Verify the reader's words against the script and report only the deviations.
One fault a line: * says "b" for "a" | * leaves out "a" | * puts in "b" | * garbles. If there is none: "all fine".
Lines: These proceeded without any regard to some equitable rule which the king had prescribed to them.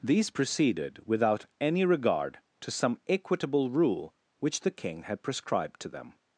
all fine